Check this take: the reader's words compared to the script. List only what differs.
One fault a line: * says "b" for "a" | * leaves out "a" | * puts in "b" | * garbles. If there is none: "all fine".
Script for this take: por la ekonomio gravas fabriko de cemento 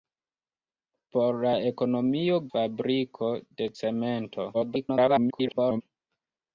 * leaves out "gravas"
* garbles